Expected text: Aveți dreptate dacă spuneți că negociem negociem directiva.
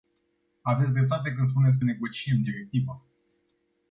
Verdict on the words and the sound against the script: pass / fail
fail